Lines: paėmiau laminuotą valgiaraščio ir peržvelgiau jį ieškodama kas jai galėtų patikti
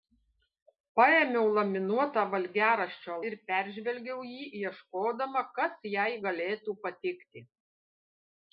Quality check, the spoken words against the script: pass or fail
pass